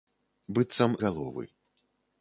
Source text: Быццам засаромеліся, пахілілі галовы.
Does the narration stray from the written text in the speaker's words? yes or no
yes